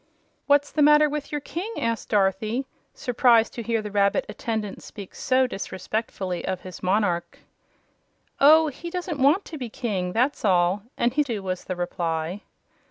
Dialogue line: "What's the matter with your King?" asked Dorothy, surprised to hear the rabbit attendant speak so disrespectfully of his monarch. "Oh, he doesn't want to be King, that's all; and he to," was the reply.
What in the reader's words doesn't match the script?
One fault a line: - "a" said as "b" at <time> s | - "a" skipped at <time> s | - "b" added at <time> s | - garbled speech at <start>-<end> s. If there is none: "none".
none